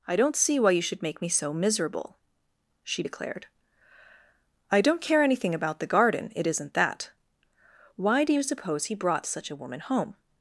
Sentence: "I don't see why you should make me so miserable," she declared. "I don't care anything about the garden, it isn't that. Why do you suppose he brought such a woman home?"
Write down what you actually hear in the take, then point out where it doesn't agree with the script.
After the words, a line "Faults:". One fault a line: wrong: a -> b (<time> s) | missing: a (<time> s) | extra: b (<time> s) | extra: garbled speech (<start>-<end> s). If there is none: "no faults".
"I don't see why you should make me so miserable," she declared. "I don't care anything about the garden, it isn't that. Why do you suppose he brought such a woman home?"
Faults:
no faults